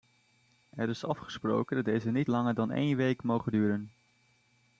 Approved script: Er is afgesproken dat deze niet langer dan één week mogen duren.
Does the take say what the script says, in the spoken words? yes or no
yes